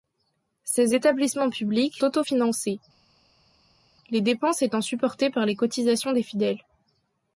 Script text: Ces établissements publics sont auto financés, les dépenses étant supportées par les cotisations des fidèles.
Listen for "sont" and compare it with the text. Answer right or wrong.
wrong